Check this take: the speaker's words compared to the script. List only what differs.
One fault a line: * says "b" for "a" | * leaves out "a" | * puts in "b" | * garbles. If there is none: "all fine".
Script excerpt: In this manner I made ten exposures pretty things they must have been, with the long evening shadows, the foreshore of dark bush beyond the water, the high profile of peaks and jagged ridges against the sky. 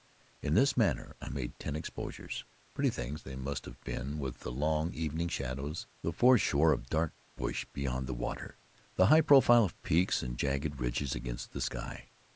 all fine